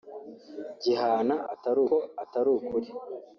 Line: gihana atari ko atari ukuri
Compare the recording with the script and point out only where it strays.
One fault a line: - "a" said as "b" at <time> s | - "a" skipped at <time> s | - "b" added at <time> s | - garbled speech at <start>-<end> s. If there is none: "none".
none